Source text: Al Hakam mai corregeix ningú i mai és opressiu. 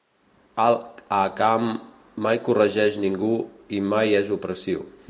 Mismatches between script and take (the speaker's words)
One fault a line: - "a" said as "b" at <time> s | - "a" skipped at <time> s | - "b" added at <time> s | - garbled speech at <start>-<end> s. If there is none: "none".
none